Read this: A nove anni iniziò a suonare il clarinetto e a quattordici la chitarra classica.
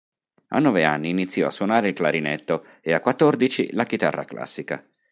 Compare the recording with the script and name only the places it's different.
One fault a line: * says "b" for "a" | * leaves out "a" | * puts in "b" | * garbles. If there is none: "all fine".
all fine